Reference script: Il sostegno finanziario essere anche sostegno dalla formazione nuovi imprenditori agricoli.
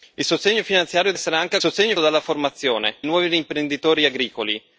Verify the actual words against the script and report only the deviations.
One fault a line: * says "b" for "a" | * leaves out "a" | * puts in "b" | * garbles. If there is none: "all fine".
all fine